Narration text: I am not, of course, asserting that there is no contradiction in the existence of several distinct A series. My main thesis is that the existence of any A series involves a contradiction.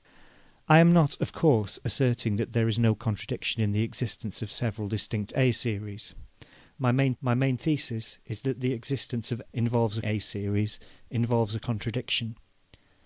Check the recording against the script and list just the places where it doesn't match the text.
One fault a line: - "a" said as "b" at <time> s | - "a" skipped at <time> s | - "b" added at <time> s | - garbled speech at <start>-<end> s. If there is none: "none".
- "my main" added at 7.2 s
- "any" said as "involves" at 9.5 s